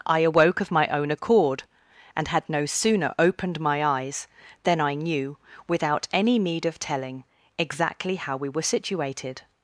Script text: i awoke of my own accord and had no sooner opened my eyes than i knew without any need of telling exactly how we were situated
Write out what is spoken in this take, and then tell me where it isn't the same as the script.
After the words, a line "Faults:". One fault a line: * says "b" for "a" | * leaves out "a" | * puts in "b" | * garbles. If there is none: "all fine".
i awoke of my own accord and had no sooner opened my eyes than i knew without any need of telling exactly how we were situated
Faults:
all fine